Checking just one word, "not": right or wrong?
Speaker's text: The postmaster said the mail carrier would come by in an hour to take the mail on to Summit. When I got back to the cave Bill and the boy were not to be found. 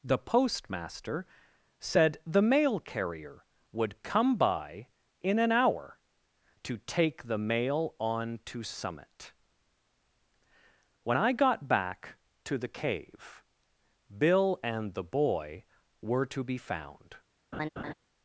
wrong